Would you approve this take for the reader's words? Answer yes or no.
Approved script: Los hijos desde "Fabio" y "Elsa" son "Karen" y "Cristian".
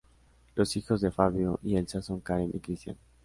no